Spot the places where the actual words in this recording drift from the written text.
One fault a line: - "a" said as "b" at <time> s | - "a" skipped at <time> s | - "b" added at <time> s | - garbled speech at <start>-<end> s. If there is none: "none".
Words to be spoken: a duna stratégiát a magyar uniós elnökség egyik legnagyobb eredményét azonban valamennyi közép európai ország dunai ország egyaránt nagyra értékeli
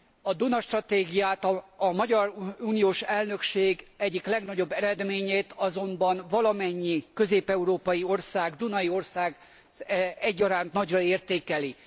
none